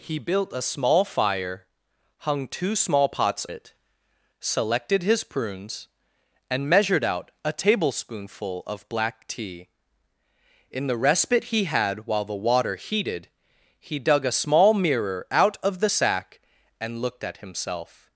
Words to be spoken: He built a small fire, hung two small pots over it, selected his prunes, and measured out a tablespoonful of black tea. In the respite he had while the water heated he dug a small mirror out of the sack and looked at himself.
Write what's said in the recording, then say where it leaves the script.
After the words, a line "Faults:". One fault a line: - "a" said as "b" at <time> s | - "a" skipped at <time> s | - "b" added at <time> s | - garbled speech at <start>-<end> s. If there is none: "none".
He built a small fire, hung two small pots it, selected his prunes, and measured out a tablespoonful of black tea. In the respite he had while the water heated he dug a small mirror out of the sack and looked at himself.
Faults:
- "over" skipped at 3.5 s